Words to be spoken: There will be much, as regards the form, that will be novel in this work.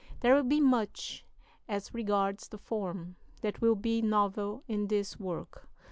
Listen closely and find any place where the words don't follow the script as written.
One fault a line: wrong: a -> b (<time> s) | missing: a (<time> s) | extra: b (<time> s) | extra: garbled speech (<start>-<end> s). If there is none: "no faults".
no faults